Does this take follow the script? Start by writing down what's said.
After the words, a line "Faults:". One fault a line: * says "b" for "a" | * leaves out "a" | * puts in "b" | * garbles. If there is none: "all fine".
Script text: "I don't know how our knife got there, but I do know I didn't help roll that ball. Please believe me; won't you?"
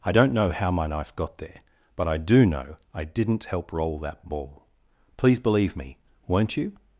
"I don't know how my knife got there, but I do know I didn't help roll that ball. Please believe me; won't you?"
Faults:
* says "my" for "our"